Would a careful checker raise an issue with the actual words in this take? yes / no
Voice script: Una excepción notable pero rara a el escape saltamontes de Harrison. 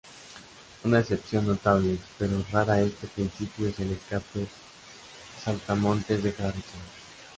yes